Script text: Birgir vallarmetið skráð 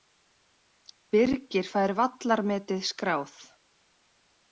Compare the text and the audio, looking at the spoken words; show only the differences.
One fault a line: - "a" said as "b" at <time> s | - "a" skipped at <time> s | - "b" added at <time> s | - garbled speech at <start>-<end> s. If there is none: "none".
- "fær" added at 1.7 s